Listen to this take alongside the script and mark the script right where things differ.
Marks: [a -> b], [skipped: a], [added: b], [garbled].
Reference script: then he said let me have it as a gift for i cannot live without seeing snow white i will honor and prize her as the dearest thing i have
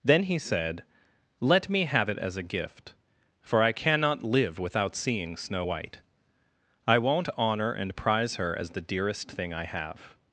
then he said let me have it as a gift for i cannot live without seeing snow white i [will -> won't] honor and prize her as the dearest thing i have